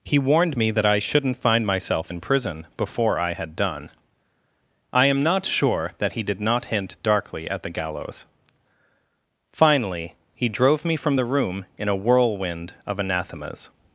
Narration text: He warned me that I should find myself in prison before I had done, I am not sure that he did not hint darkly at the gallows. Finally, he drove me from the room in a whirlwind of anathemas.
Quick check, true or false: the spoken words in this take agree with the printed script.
false